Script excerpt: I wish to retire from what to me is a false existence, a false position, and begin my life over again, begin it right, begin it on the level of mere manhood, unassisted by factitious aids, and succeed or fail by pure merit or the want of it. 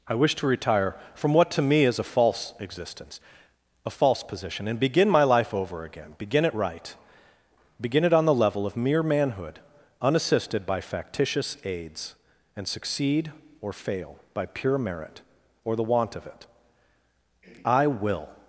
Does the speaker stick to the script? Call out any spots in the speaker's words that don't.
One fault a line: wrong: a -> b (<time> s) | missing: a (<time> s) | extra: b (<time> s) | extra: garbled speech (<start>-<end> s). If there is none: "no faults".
extra: I will (17.7 s)